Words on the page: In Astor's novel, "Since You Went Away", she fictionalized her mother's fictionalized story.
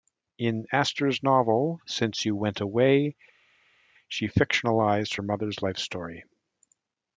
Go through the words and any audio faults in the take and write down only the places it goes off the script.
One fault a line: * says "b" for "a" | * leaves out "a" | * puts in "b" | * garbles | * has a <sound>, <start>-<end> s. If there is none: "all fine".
* says "life" for "fictionalized"